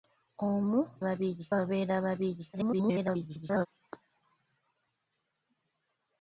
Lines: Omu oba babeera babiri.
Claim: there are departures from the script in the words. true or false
true